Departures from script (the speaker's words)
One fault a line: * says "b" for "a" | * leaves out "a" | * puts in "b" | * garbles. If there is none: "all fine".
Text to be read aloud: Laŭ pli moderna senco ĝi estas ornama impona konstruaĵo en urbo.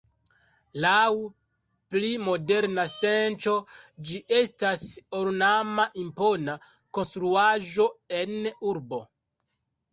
all fine